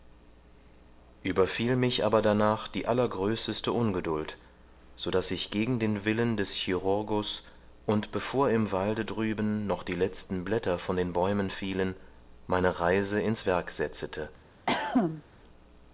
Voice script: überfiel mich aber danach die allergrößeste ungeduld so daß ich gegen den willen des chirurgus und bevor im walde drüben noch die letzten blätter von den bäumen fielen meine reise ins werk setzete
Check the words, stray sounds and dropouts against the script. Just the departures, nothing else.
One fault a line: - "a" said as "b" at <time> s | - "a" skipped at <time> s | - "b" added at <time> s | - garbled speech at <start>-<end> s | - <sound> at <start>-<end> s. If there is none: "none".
- cough at 14.7-15.2 s